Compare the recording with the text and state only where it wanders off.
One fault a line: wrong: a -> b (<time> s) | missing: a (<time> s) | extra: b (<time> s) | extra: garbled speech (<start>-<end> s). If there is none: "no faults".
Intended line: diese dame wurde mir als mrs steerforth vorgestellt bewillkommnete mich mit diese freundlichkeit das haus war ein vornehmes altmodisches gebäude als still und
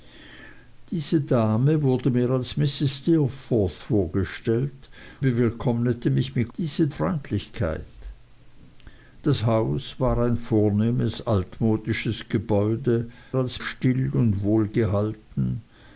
no faults